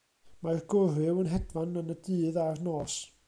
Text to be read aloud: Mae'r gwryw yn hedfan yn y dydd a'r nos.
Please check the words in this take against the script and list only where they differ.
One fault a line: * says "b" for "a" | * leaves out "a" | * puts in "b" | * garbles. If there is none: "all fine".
all fine